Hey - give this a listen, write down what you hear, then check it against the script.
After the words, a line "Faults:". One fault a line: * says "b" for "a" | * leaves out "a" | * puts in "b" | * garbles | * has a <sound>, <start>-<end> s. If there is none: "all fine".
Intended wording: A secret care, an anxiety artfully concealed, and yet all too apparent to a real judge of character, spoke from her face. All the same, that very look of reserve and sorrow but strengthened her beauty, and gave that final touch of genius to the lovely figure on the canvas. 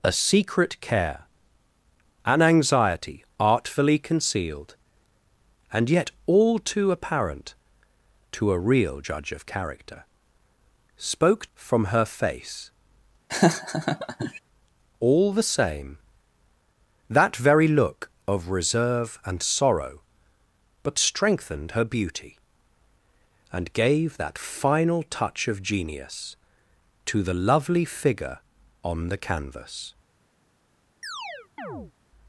A secret care, an anxiety artfully concealed, and yet all too apparent to a real judge of character, spoke from her face. All the same, that very look of reserve and sorrow but strengthened her beauty, and gave that final touch of genius to the lovely figure on the canvas.
Faults:
* has a laugh, 13.3-14.4 s
* has a chirp, 31.0-31.9 s